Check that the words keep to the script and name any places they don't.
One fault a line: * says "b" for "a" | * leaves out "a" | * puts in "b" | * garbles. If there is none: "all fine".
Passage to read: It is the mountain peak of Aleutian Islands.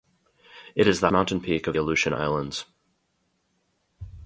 all fine